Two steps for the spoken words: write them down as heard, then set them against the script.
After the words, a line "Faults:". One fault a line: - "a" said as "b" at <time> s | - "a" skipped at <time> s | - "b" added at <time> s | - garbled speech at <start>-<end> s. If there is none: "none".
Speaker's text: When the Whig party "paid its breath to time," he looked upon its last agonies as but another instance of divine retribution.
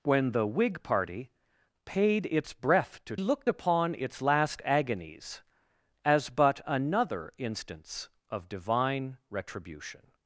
When the Whig party "paid its breath to looked upon its last agonies as but another instance of divine retribution.
Faults:
- "time he" skipped at 3.1 s